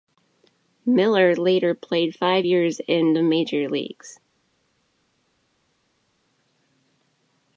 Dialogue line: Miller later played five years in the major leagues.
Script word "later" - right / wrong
right